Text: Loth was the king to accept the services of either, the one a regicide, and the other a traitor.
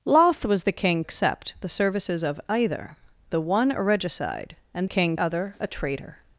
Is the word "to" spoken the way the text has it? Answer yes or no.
no